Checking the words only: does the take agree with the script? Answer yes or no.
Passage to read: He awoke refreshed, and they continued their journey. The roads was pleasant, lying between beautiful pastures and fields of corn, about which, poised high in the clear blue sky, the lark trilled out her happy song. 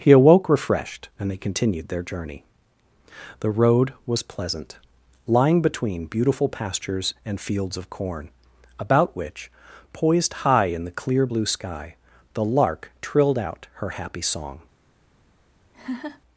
no